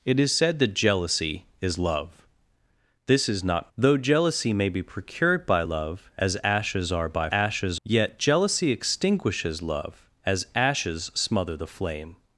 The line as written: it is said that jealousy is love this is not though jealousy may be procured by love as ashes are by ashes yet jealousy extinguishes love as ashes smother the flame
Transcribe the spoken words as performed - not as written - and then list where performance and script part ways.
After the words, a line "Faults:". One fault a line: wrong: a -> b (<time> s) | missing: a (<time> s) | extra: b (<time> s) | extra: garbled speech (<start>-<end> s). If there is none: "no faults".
it is said that jealousy is love this is not though jealousy may be procured by love as ashes are by ashes yet jealousy extinguishes love as ashes smother the flame
Faults:
no faults